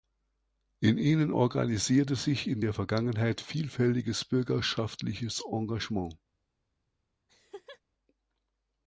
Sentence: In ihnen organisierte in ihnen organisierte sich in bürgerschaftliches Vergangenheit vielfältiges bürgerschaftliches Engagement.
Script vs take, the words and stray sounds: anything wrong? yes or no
yes